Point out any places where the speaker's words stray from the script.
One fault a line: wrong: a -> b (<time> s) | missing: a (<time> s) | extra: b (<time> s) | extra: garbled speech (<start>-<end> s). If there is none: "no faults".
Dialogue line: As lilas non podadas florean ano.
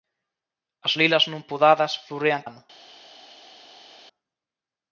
no faults